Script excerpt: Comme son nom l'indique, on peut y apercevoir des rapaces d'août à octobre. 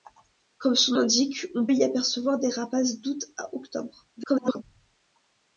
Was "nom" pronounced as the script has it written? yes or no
no